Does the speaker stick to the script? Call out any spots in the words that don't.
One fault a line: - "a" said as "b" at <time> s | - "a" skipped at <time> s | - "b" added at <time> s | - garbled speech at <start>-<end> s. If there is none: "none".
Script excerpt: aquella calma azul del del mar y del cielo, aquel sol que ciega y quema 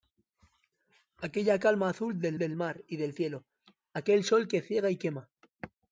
none